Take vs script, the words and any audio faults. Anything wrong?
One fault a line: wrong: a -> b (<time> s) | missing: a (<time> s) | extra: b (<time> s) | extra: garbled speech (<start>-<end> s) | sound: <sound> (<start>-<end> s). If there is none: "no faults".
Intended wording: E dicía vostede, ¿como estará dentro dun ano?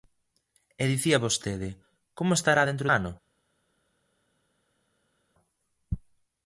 missing: dun (2.9 s)